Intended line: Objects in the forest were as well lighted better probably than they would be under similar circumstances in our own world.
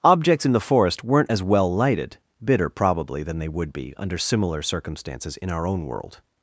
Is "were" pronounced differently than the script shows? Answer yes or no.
yes